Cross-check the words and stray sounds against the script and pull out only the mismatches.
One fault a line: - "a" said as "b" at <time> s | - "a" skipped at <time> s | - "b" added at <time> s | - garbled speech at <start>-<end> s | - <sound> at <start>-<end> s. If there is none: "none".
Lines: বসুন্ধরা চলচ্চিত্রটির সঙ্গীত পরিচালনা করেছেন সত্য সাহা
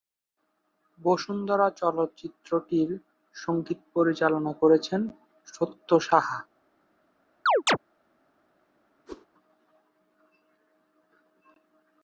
- chirp at 7.5-7.8 s
- whoosh at 9.1-9.3 s